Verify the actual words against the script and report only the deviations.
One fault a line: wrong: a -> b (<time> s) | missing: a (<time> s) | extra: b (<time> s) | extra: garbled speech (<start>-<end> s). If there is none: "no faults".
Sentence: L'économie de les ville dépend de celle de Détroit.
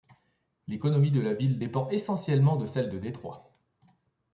wrong: les -> la (1.2 s)
extra: essentiellement (1.9 s)